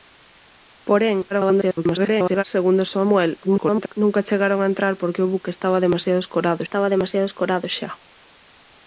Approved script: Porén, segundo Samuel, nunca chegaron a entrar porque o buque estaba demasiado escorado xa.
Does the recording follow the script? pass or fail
fail